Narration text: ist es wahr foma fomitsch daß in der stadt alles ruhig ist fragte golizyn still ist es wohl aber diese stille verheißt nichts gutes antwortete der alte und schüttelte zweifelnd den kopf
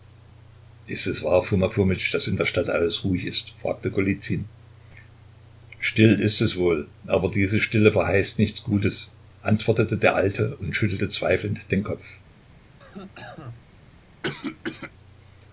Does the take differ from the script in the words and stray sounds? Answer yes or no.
yes